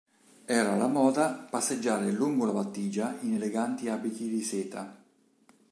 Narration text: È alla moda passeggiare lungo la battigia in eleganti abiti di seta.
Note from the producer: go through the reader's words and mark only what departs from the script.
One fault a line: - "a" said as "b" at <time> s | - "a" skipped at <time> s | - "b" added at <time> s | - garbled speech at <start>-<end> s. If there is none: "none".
- "È" said as "Era" at 0.5 s